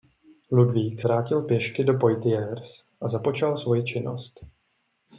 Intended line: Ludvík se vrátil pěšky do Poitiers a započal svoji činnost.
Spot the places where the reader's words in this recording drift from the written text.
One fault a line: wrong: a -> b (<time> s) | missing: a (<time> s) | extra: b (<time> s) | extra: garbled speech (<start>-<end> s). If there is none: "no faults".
missing: se (1.0 s)